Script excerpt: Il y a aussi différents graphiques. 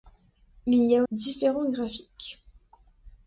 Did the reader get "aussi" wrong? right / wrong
wrong